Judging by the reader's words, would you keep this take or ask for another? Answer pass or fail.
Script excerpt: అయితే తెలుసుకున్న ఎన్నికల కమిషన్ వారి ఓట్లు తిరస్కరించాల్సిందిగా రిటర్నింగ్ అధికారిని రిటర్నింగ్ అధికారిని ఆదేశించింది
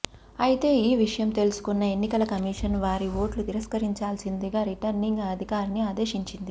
fail